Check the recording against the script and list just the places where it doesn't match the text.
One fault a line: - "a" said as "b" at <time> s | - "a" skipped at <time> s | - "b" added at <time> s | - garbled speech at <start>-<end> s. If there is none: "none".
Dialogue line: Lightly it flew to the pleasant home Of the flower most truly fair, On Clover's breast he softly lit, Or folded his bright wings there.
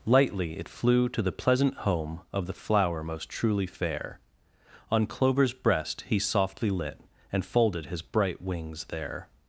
- "Or" said as "And" at 7.3 s